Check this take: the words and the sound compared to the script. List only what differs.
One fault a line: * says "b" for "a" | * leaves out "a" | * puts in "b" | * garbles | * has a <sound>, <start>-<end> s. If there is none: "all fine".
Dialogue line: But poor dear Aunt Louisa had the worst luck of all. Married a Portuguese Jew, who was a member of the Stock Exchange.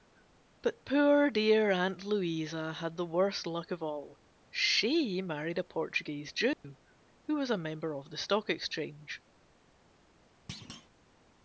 * puts in "She"
* has a dropout, 6.5-6.6 s
* has a thud, 10.5-10.9 s